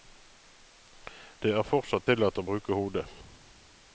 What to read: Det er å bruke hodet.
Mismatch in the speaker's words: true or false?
true